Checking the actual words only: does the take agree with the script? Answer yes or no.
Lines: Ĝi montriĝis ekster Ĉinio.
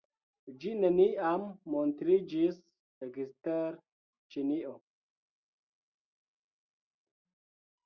no